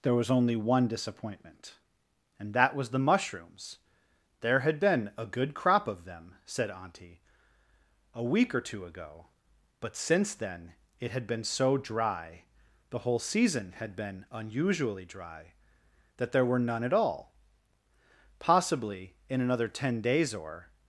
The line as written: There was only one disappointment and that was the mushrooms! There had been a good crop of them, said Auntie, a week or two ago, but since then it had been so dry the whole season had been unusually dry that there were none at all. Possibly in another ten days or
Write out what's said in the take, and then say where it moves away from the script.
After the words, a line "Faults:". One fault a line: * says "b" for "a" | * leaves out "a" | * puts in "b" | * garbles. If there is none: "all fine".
There was only one disappointment and that was the mushrooms! There had been a good crop of them, said Auntie, a week or two ago, but since then it had been so dry the whole season had been unusually dry that there were none at all. Possibly in another ten days or
Faults:
all fine